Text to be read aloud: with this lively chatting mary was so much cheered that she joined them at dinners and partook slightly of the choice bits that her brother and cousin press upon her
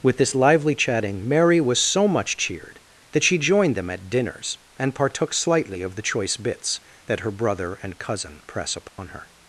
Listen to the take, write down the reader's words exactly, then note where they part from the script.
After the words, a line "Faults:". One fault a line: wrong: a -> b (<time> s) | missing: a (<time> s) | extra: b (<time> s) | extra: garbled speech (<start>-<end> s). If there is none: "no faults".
with this lively chatting mary was so much cheered that she joined them at dinners and partook slightly of the choice bits that her brother and cousin press upon her
Faults:
no faults